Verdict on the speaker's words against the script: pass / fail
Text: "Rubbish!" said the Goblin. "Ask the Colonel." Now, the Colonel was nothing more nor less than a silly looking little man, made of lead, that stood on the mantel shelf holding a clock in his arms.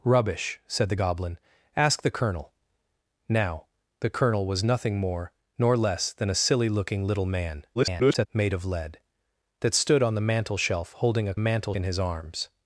fail